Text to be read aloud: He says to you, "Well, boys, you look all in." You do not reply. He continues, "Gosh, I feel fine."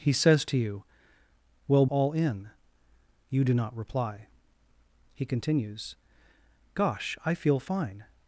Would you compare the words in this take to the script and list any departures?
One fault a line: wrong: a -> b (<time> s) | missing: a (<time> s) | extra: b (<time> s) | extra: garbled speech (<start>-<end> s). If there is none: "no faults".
missing: boys you look (1.9 s)